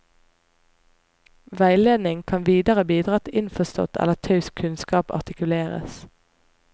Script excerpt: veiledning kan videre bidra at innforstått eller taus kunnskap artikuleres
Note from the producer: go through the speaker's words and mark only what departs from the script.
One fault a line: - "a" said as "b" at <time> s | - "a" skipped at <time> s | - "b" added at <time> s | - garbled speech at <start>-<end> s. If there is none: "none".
none